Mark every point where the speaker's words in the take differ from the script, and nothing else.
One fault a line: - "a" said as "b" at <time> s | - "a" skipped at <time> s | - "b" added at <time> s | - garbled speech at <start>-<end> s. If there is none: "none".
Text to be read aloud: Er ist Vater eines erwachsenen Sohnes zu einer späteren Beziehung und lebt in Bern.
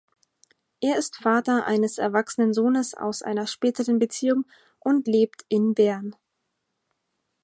- "zu" said as "aus" at 3.0 s